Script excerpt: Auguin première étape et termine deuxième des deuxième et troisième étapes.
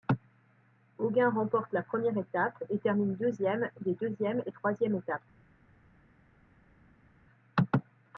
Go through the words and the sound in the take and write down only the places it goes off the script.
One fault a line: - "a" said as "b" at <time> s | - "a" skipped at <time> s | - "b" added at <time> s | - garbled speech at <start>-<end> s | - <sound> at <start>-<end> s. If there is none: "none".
- "remporte la" added at 1.3 s